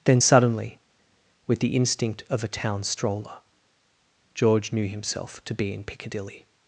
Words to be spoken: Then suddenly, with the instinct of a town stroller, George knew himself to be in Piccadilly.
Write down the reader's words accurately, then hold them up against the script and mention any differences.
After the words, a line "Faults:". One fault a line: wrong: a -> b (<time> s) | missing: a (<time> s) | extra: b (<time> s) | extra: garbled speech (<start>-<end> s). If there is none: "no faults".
Then suddenly, with the instinct of a town stroller, George knew himself to be in Piccadilly.
Faults:
no faults